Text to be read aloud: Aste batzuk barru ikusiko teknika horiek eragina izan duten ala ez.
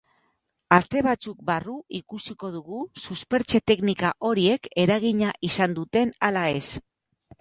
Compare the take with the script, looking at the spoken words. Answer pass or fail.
fail